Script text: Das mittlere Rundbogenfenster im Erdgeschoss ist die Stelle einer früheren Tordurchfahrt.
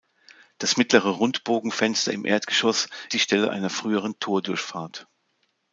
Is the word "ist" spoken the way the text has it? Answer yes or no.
no